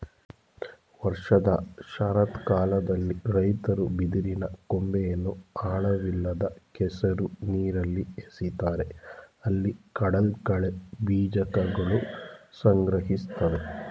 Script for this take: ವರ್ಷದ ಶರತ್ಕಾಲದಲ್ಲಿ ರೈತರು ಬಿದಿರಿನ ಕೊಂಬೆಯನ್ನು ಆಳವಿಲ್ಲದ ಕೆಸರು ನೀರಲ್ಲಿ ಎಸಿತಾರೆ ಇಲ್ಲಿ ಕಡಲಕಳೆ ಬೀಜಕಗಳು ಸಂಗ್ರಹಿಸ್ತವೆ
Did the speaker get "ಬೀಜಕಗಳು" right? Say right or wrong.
right